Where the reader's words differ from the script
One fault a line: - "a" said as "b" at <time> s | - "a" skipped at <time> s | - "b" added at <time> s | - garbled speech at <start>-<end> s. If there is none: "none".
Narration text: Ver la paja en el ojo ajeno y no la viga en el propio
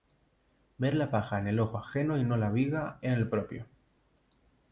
none